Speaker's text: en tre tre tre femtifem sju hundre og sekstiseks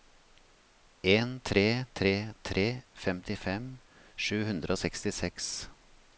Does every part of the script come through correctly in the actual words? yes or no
yes